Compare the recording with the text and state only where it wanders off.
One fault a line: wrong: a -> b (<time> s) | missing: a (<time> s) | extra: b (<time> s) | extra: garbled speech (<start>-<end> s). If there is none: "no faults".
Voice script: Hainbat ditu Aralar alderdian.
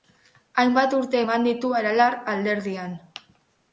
extra: urte eman (1.0 s)